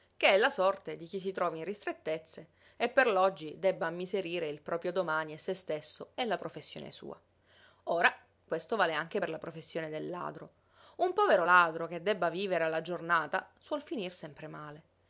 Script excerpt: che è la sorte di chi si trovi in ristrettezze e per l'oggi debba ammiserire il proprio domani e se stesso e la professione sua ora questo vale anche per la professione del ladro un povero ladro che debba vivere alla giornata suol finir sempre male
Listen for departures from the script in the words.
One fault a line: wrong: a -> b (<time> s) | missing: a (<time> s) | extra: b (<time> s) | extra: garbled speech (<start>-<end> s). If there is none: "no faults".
no faults